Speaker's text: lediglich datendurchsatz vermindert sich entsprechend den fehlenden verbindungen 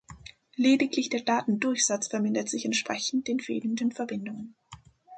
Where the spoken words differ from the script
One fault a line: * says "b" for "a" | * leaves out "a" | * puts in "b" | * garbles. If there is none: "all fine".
* puts in "der"